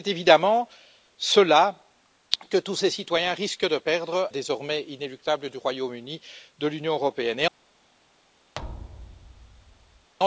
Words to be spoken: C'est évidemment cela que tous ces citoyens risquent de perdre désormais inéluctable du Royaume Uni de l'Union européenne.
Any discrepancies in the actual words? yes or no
no